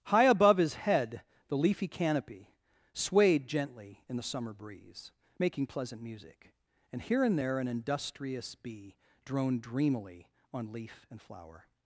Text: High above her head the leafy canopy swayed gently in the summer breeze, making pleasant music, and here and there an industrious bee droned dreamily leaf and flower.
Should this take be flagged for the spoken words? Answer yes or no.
yes